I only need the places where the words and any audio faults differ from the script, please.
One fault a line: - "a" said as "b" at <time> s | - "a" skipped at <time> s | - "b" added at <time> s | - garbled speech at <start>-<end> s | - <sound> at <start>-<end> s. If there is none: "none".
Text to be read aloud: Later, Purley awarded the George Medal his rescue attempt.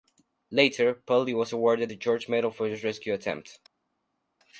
- "was" added at 1.4 s
- "for" added at 2.5 s